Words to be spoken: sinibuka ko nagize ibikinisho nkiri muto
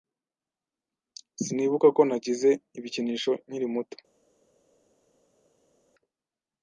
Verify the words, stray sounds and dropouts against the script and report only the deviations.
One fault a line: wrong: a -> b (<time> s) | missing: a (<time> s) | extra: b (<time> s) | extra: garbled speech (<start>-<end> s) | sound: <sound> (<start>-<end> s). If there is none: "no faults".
no faults